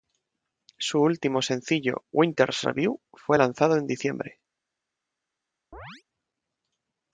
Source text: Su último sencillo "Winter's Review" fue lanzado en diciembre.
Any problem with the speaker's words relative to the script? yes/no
no